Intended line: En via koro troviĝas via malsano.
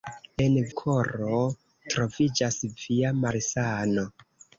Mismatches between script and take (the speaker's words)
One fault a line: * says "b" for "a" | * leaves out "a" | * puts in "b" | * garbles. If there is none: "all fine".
* leaves out "via"